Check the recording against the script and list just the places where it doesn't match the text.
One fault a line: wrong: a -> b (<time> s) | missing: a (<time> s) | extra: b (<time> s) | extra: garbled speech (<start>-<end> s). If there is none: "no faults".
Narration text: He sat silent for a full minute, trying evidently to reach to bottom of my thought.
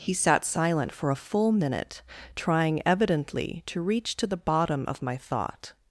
extra: the (4.2 s)